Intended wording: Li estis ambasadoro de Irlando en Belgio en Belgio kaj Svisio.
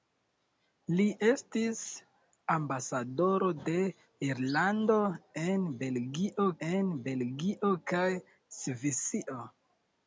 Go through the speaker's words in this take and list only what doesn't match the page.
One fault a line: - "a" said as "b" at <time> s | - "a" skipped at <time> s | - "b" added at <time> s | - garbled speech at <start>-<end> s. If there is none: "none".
none